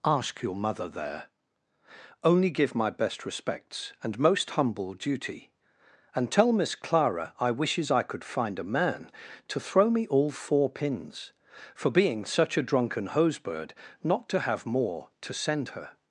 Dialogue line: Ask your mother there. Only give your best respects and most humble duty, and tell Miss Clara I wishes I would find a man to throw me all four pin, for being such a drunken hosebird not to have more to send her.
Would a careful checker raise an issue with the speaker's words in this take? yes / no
yes